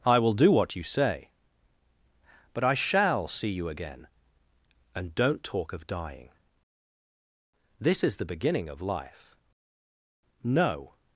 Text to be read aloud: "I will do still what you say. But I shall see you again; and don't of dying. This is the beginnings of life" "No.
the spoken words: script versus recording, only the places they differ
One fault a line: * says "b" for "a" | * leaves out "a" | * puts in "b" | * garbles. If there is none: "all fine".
* leaves out "still"
* puts in "talk"
* says "beginning" for "beginnings"